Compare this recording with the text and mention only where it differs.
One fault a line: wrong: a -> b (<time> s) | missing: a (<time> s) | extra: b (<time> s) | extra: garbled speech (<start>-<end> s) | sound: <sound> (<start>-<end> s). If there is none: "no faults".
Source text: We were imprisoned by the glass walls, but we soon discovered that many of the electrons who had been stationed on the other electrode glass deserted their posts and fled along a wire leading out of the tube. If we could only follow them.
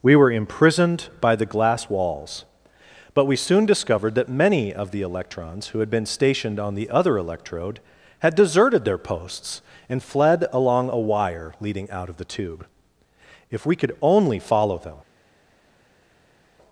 wrong: glass -> had (8.2 s)